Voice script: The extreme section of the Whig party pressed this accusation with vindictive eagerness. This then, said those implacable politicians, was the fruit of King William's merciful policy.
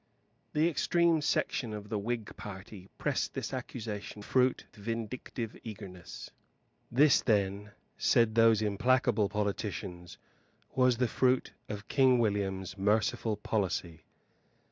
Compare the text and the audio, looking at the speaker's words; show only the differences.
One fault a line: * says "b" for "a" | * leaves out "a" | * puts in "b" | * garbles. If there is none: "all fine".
* says "fruit" for "with"